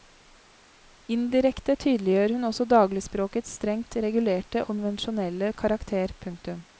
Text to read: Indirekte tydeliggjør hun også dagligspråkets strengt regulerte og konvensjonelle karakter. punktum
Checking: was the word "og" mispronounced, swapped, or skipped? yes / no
yes